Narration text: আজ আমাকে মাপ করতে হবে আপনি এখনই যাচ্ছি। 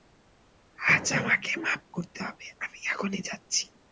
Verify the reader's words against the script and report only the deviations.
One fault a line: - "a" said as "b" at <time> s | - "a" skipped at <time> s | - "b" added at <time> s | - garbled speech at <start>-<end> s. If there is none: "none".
- "আপনি" said as "আমি" at 2.6 s